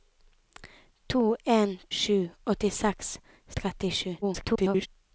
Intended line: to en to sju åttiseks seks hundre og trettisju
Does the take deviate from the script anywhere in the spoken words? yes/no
yes